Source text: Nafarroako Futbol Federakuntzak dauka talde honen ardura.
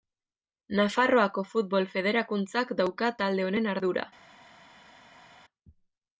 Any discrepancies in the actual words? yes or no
no